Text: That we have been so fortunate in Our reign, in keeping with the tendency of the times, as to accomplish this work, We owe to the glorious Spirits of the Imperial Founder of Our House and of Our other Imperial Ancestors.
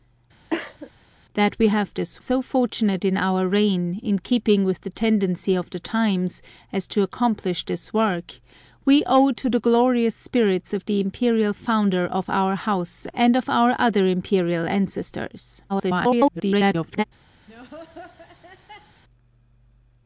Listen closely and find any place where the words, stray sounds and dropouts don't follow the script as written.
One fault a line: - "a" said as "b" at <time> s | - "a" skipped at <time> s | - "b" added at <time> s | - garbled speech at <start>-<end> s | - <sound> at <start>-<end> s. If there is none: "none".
- cough at 0.5-0.9 s
- "been" said as "this" at 1.9 s
- garbled speech at 15.7-17.0 s
- laugh at 17.5-19.0 s